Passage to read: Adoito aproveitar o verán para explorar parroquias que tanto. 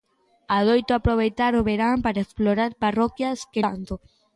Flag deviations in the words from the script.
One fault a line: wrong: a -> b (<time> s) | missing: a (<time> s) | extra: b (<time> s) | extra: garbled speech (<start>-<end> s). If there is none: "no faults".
no faults